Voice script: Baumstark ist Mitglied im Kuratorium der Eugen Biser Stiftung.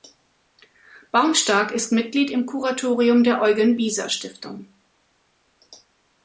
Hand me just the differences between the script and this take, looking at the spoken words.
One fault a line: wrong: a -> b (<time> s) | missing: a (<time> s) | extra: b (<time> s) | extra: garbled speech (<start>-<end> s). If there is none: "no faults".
no faults